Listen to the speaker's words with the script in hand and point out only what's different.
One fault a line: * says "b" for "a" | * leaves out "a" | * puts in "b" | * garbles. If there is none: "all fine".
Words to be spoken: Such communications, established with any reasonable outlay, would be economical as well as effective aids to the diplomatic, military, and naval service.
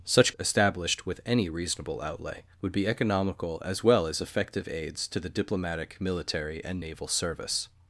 * leaves out "communications"